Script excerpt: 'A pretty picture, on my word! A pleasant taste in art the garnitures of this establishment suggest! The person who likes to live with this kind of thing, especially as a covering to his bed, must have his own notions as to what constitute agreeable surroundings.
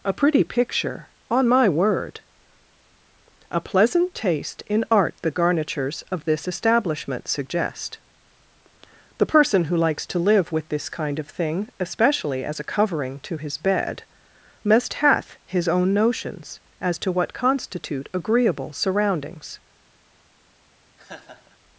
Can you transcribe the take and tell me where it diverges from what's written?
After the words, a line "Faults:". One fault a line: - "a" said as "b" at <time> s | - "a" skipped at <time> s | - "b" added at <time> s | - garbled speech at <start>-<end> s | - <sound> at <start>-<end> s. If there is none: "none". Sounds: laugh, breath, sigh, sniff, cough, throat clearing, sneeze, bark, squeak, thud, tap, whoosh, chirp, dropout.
'A pretty picture, on my word! A pleasant taste in art the garnitures of this establishment suggest! The person who likes to live with this kind of thing, especially as a covering to his bed, must hath his own notions as to what constitute agreeable surroundings.
Faults:
- "have" said as "hath" at 14.9 s
- laugh at 21.0-21.6 s